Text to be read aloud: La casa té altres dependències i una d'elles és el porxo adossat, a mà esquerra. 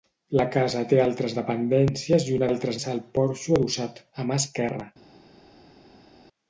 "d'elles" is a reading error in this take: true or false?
true